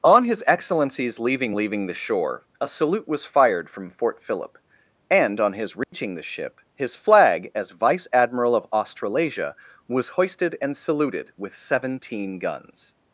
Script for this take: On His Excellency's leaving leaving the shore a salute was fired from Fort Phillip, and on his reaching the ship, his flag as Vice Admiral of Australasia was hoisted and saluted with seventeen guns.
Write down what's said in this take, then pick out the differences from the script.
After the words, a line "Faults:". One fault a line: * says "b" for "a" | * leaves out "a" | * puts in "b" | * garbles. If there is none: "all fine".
On His Excellency's leaving leaving the shore a salute was fired from Fort Phillip, and on his reaching the ship, his flag as Vice Admiral of Australasia was hoisted and saluted with seventeen guns.
Faults:
all fine